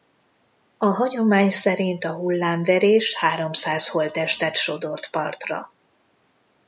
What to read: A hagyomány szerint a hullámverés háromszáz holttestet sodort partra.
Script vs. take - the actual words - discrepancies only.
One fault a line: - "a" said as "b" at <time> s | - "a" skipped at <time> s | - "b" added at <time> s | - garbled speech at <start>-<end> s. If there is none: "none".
none